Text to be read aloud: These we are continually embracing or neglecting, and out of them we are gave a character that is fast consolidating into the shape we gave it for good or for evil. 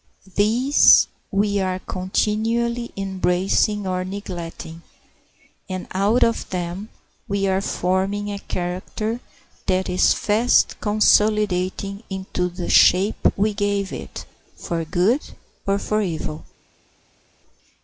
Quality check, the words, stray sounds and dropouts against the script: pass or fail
fail